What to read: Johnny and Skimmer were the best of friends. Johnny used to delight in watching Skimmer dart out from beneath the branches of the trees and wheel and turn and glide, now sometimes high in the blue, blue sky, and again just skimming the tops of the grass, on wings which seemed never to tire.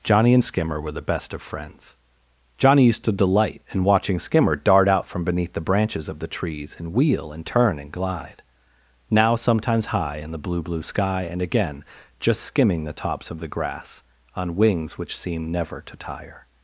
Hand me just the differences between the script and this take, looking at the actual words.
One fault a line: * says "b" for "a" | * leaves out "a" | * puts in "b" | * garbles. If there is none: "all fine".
all fine